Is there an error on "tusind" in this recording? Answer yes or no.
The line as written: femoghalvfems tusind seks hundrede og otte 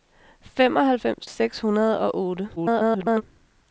yes